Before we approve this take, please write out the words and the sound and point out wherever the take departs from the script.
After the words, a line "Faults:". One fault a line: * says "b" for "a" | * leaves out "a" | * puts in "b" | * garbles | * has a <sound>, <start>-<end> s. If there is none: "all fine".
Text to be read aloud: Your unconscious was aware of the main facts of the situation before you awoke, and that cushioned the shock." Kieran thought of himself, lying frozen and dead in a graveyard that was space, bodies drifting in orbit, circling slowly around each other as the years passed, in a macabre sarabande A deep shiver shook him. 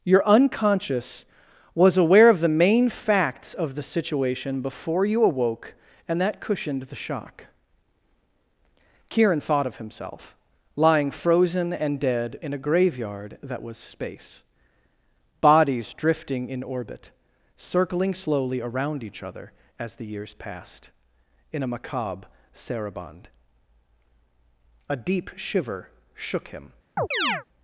Your unconscious was aware of the main facts of the situation before you awoke, and that cushioned the shock." Kieran thought of himself, lying frozen and dead in a graveyard that was space, bodies drifting in orbit, circling slowly around each other as the years passed, in a macabre sarabande A deep shiver shook him.
Faults:
* has a chirp, 27.0-27.4 s